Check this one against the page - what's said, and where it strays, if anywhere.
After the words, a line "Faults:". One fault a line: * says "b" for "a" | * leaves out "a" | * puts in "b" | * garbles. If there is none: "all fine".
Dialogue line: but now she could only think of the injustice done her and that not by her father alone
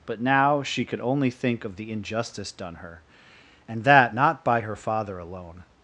but now she could only think of the injustice done her and that not by her father alone
Faults:
all fine